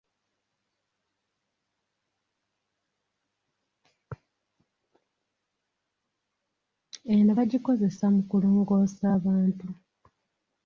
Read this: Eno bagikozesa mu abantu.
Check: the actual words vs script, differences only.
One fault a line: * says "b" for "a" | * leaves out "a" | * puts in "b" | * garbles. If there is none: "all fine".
* puts in "kulongoosa"